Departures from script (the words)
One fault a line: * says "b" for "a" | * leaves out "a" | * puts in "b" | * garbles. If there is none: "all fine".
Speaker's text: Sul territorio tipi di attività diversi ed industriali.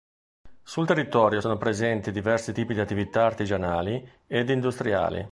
* puts in "sono presenti diversi"
* says "artigianali" for "diversi"